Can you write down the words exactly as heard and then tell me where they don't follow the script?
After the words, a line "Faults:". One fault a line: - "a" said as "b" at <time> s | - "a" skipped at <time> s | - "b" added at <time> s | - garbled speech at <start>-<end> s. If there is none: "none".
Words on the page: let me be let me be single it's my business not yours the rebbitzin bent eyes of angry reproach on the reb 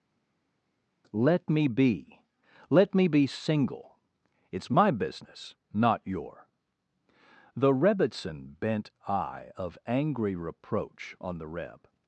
let me be let me be single it's my business not your the rebbitzin bent eye of angry reproach on the reb
Faults:
- "yours" said as "your" at 6.0 s
- "eyes" said as "eye" at 9.1 s